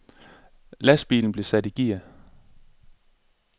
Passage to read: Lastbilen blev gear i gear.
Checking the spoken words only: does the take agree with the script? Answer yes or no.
no